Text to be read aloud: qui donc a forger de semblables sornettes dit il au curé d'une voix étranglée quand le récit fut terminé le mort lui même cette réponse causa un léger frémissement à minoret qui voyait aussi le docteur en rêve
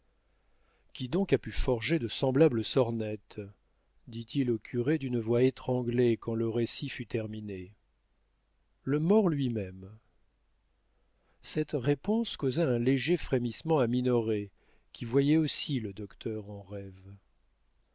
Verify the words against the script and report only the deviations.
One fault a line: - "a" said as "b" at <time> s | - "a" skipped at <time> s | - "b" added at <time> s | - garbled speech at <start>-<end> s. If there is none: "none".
- "pu" added at 1.4 s